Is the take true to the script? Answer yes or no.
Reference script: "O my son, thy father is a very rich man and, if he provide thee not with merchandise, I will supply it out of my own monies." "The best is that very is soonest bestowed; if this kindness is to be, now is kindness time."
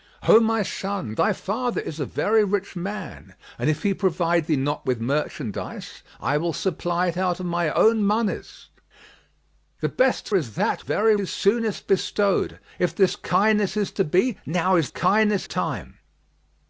yes